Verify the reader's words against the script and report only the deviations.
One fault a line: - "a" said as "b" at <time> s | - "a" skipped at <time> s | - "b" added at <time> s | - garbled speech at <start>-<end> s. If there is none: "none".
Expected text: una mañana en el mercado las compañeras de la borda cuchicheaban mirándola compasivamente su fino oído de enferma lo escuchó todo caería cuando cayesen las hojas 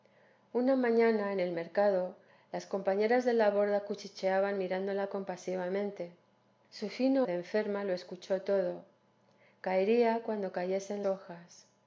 - "oído" skipped at 7.3 s
- "las" skipped at 11.0 s